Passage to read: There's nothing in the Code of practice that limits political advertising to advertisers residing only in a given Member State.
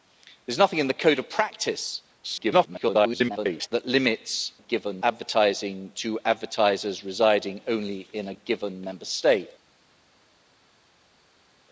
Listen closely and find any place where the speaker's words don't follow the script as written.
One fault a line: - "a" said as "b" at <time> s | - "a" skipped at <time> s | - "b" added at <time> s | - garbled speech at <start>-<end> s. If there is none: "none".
- garbled speech at 2.2-3.7 s
- "political" said as "given" at 4.6 s